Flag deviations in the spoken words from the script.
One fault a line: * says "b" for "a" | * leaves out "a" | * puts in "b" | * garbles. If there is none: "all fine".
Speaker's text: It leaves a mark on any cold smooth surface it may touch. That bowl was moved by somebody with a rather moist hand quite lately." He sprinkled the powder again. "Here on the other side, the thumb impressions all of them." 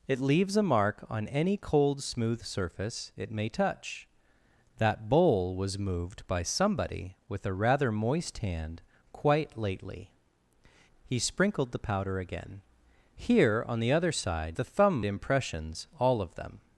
all fine